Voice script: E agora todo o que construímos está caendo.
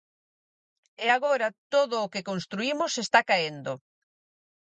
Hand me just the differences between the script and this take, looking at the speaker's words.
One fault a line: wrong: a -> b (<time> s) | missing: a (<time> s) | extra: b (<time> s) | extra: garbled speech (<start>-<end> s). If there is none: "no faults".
no faults